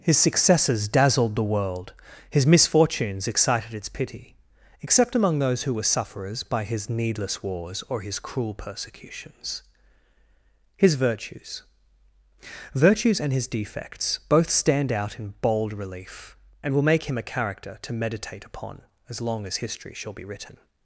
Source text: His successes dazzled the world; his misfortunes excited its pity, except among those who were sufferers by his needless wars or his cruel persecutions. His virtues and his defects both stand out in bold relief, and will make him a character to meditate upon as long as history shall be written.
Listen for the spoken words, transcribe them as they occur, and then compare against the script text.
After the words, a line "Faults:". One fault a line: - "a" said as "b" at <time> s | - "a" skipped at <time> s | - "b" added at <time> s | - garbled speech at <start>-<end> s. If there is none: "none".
His successes dazzled the world; his misfortunes excited its pity, except among those who were sufferers by his needless wars or his cruel persecutions. His virtues virtues and his defects both stand out in bold relief, and will make him a character to meditate upon as long as history shall be written.
Faults:
- "virtues" added at 12.7 s